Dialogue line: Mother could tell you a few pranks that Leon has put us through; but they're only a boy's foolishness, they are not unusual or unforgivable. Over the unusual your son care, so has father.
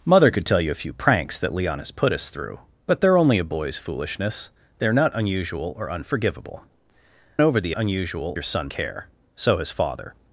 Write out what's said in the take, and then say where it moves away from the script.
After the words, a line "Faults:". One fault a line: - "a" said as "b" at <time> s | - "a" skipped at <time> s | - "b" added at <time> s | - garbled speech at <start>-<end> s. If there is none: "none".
Mother could tell you a few pranks that Leon has put us through; but they're only a boy's foolishness, they are not unusual or unforgivable. Over the unusual your son care, so has father.
Faults:
none